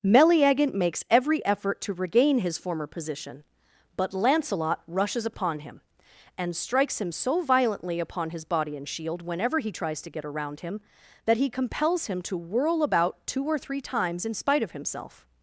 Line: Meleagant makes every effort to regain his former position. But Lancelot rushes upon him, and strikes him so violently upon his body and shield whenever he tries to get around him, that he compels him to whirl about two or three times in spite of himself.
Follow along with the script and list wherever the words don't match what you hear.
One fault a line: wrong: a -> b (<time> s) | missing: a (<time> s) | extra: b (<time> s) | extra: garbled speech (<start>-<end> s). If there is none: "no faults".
no faults